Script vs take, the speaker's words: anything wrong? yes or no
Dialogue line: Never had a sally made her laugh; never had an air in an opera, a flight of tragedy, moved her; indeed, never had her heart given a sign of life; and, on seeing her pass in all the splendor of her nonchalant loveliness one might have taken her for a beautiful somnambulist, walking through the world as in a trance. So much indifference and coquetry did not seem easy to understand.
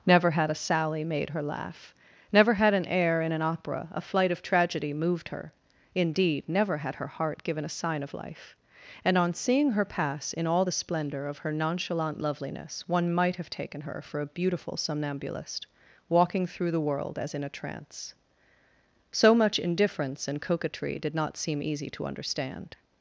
no